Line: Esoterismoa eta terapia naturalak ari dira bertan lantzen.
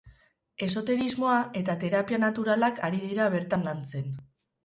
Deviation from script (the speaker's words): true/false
false